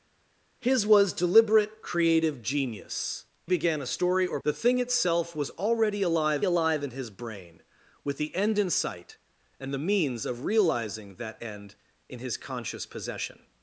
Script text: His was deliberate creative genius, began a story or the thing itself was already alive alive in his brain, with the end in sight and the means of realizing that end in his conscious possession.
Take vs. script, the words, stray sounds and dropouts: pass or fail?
pass